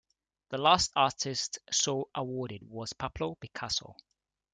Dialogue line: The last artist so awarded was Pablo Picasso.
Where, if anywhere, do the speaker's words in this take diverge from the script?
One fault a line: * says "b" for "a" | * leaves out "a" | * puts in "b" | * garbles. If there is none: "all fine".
all fine